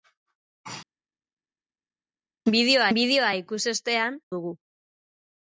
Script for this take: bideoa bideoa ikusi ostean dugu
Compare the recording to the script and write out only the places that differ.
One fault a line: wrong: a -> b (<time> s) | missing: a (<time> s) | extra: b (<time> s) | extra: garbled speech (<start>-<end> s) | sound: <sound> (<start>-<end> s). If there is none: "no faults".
no faults